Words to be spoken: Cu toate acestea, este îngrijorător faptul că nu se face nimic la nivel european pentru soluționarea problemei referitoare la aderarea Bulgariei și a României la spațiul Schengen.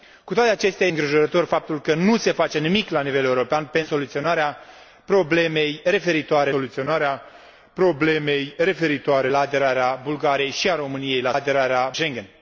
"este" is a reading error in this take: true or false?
true